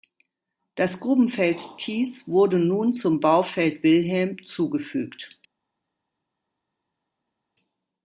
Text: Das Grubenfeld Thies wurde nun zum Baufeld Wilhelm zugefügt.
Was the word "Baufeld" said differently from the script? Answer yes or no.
no